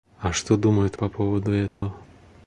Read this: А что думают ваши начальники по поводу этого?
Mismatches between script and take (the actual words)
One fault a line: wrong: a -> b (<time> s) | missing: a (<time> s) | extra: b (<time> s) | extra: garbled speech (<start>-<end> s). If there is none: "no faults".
missing: ваши начальники (1.0 s)